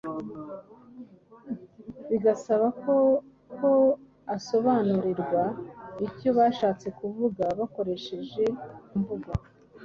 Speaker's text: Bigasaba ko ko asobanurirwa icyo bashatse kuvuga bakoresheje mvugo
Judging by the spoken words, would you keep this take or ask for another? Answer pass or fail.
pass